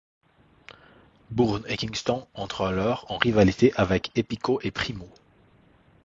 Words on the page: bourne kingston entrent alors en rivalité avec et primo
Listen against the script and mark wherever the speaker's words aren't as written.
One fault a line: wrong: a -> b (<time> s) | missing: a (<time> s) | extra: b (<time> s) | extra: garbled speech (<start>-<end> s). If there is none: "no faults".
extra: et (1.7 s)
extra: epico (4.2 s)